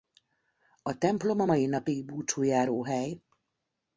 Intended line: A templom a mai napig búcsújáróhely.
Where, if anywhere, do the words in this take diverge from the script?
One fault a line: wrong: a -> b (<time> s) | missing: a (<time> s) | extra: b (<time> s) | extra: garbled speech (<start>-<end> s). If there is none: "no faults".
no faults